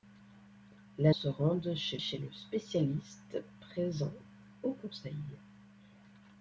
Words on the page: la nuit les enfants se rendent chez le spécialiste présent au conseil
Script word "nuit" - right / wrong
wrong